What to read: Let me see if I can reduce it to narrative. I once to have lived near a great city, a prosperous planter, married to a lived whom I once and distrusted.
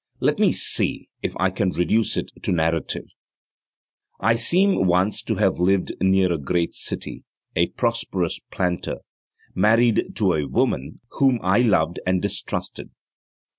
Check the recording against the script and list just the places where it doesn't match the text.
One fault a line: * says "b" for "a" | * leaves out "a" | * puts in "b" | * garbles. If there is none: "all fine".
* puts in "seem"
* says "woman" for "lived"
* says "loved" for "once"